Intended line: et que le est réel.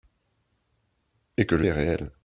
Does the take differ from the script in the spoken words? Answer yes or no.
no